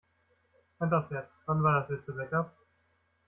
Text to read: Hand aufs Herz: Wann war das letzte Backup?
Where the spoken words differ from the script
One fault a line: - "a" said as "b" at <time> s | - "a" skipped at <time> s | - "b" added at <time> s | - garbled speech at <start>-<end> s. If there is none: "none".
none